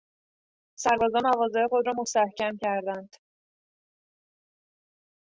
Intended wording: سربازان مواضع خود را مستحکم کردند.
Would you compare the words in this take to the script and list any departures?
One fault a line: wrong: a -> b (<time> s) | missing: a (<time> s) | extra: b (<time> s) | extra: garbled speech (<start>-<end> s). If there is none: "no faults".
no faults